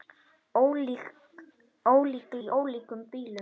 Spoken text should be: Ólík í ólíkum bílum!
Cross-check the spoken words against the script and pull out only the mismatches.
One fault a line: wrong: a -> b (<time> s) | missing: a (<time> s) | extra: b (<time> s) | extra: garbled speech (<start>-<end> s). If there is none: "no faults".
no faults